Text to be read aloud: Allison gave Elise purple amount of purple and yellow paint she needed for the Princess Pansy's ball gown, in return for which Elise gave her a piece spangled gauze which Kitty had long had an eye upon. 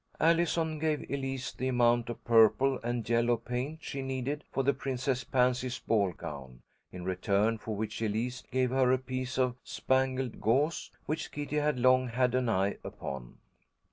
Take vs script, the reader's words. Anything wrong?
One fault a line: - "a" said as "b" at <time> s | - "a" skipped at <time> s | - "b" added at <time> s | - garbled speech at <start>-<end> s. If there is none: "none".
- "purple" said as "the" at 1.5 s
- "of" added at 9.4 s